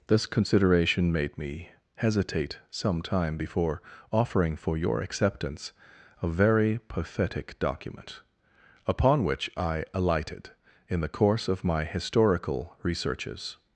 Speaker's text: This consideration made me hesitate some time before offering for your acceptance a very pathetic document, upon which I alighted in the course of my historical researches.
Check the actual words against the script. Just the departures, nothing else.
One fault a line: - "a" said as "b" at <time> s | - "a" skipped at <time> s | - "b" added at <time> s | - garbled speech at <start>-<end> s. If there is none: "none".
none